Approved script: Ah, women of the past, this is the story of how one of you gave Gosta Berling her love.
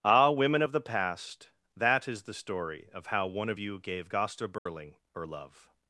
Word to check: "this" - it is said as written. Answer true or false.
false